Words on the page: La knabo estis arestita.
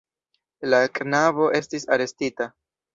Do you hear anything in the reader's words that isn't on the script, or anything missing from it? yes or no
no